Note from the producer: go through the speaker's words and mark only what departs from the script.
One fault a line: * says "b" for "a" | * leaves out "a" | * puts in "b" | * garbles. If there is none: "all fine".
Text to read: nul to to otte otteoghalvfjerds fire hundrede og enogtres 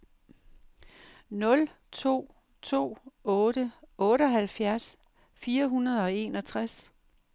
all fine